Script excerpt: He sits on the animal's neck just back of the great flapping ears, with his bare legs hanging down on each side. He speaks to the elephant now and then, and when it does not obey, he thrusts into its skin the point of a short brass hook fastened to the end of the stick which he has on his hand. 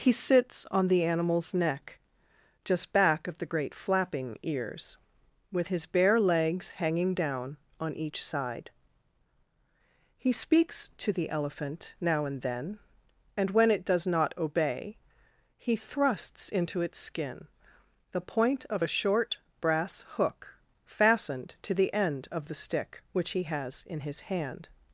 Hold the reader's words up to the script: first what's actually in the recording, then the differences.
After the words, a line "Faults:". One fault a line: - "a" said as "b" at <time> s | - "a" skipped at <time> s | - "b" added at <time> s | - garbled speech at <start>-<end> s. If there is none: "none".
He sits on the animal's neck just back of the great flapping ears, with his bare legs hanging down on each side. He speaks to the elephant now and then, and when it does not obey, he thrusts into its skin the point of a short brass hook fastened to the end of the stick which he has in his hand.
Faults:
- "on" said as "in" at 23.9 s